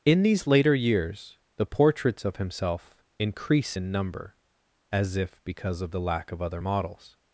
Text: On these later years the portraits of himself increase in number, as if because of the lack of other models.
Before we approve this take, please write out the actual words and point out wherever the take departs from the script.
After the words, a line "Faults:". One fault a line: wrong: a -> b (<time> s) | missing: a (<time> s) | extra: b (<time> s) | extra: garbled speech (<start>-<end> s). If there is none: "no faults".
In these later years the portraits of himself increase in number, as if because of the lack of other models.
Faults:
wrong: On -> In (0.0 s)